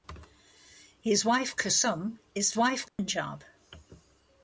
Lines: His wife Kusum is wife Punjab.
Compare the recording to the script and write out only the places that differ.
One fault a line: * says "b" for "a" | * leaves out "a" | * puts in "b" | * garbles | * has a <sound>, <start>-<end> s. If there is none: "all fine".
* has a dropout, 2.9-3.0 s